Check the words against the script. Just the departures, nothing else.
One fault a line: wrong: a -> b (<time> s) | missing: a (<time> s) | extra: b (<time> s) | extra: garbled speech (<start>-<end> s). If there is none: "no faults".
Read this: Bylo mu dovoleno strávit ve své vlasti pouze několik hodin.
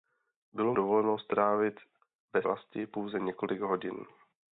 missing: mu (0.7 s)
missing: své (2.4 s)